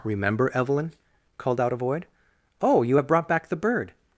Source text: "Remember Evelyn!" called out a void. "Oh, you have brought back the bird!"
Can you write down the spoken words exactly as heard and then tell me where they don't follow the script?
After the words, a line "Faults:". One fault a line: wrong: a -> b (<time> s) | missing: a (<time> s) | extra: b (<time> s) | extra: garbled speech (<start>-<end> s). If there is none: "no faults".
"Remember Evelyn!" called out a void. "Oh, you have brought back the bird!"
Faults:
no faults